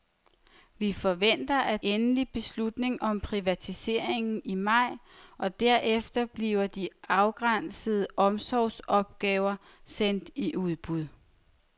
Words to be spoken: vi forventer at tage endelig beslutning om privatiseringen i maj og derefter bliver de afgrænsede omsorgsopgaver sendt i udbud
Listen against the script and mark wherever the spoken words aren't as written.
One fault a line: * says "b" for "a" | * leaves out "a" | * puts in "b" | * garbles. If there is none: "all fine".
* leaves out "tage"